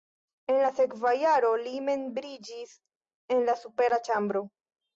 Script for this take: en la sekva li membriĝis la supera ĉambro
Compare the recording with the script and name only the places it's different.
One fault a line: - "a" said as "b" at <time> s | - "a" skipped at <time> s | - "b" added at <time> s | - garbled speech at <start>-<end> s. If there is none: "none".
- "jaro" added at 1.2 s
- "en" added at 3.4 s